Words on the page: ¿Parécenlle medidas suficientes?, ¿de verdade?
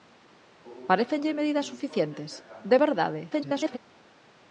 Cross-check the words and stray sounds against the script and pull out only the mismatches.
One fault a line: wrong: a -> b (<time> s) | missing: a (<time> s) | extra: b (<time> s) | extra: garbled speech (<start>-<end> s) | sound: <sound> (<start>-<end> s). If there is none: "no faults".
extra: garbled speech (3.3-3.8 s)